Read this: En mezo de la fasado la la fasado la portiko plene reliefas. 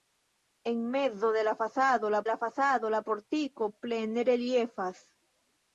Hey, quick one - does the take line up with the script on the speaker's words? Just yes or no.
yes